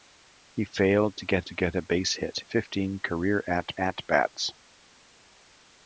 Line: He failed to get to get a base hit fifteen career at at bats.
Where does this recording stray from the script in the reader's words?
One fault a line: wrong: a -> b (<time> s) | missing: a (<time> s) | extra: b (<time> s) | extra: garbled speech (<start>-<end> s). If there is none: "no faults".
no faults